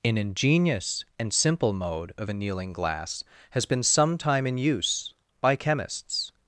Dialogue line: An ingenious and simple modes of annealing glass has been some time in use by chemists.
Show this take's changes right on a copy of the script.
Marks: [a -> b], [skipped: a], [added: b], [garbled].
An ingenious and simple [modes -> mode] of annealing glass has been some time in use by chemists.